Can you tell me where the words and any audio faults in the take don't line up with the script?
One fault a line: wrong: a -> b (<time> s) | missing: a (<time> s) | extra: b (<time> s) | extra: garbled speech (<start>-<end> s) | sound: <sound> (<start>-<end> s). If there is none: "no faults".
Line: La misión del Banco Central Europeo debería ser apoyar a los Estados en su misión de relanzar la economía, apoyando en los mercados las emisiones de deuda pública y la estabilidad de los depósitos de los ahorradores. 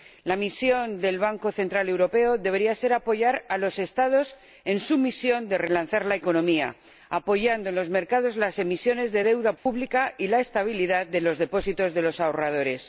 sound: dropout (9.6-9.7 s)